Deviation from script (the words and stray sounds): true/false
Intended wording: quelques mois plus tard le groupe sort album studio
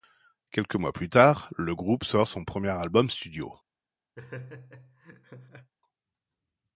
true